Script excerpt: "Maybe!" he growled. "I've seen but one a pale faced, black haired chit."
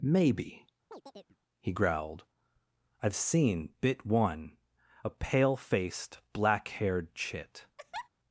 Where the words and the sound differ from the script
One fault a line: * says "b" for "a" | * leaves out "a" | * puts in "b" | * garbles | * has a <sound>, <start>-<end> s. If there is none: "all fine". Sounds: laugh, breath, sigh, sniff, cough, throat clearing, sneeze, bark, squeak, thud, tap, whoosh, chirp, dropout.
* has a chirp, 0.9-1.4 s
* says "bit" for "but"
* has a laugh, 7.8-8.1 s